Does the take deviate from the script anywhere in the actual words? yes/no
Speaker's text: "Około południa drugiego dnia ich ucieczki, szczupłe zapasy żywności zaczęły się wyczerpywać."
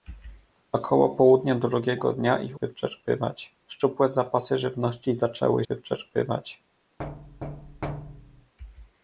yes